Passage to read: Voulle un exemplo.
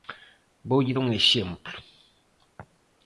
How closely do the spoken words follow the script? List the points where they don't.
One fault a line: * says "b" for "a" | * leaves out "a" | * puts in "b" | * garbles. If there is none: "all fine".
all fine